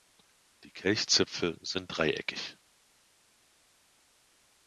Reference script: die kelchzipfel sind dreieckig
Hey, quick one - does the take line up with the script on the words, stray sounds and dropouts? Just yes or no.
yes